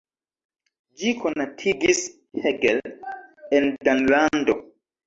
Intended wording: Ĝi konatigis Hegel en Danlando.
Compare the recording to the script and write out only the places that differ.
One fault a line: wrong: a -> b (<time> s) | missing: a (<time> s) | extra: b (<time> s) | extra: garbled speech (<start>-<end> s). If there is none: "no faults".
no faults